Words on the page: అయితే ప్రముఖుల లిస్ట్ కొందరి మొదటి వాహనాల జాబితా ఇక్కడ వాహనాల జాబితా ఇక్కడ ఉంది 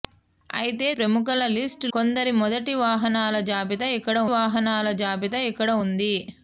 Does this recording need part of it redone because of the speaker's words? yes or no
no